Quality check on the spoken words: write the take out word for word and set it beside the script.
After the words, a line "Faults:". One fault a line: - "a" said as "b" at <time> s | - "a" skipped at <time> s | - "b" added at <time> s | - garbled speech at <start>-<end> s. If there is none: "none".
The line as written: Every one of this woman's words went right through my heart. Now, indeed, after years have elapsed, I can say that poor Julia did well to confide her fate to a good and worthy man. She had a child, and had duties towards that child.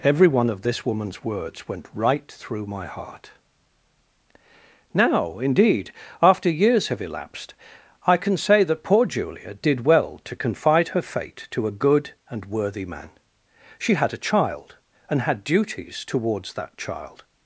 Every one of this woman's words went right through my heart. Now, indeed, after years have elapsed, I can say that poor Julia did well to confide her fate to a good and worthy man. She had a child, and had duties towards that child.
Faults:
none